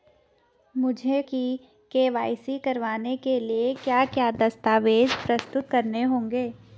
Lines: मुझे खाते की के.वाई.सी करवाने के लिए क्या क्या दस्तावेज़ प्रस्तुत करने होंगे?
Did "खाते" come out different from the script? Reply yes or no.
yes